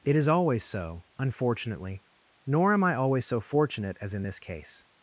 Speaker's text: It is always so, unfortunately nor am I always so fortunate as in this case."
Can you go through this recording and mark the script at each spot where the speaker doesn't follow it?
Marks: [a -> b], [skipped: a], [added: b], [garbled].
It is always so, unfortunately nor am I always so fortunate as in this case."